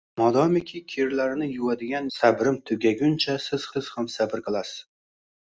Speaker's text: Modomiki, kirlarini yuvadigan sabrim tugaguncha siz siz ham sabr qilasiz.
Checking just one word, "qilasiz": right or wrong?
right